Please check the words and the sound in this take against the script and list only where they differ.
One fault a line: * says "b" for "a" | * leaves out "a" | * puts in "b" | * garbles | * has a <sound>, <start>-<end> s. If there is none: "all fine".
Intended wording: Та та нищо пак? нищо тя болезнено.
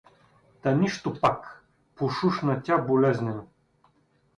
* leaves out "та"
* says "пошушна" for "нищо"